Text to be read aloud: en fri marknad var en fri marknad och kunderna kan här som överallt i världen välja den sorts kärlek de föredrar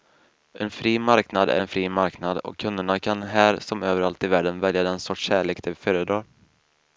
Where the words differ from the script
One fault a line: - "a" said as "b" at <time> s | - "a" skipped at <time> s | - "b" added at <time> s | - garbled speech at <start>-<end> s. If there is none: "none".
- "var" said as "är" at 1.5 s